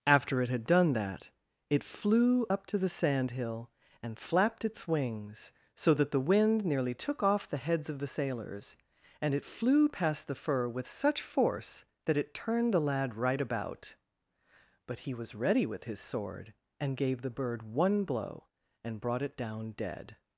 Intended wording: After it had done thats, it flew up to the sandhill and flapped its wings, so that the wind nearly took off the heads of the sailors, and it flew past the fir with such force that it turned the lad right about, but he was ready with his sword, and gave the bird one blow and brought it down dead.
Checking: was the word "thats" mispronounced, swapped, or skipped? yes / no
yes